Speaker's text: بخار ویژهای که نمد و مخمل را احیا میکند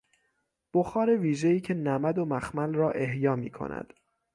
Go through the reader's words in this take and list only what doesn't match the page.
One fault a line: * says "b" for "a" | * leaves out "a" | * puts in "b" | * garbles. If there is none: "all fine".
all fine